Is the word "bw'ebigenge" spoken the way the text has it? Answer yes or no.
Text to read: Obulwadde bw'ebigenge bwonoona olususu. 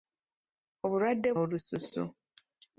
no